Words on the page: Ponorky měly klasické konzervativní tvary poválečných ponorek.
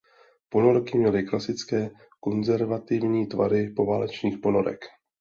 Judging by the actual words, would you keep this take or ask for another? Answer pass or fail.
pass